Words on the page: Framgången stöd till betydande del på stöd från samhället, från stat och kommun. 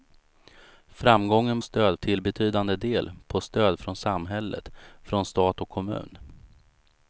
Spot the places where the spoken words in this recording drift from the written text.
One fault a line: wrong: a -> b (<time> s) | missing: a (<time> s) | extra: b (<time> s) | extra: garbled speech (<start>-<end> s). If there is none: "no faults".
no faults